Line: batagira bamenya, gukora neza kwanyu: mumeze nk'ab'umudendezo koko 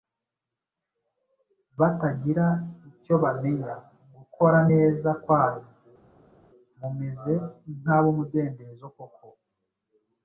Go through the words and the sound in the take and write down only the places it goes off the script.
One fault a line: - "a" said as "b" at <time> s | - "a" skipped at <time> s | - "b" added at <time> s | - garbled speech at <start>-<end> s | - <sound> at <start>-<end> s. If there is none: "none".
- "icyo" added at 2.9 s